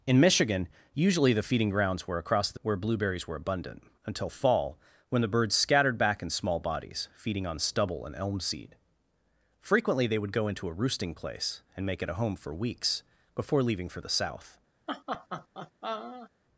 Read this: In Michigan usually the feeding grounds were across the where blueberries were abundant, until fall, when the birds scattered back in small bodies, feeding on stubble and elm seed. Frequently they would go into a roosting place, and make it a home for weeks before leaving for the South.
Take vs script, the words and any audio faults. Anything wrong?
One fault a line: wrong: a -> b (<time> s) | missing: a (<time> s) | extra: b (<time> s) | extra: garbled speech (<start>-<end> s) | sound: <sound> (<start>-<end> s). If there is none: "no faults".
sound: laugh (14.9-16.3 s)